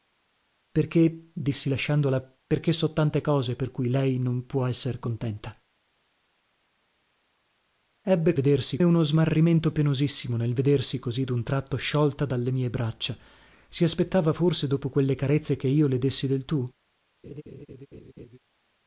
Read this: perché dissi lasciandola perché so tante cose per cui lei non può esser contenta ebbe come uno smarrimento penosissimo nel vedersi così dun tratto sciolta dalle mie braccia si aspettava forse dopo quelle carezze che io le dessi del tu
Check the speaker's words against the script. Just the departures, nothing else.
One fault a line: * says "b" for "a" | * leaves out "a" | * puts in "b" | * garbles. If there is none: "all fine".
* says "vedersi" for "come"